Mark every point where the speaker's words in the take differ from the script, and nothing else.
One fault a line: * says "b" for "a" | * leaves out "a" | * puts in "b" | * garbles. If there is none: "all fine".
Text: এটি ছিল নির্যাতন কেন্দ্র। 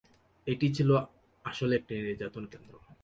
* puts in "আসলে একটি"